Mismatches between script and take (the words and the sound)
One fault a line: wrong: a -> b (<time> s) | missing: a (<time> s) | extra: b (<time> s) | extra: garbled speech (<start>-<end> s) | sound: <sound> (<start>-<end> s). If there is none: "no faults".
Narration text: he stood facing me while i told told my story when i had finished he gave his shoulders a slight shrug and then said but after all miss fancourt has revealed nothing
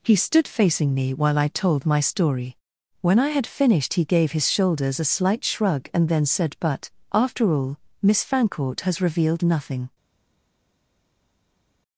missing: told (1.9 s)